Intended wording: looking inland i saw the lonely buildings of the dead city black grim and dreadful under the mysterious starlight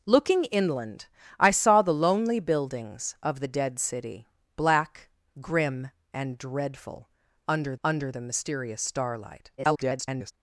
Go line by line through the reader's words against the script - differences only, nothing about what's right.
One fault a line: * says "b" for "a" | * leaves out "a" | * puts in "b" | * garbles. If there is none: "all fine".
* puts in "under"
* garbles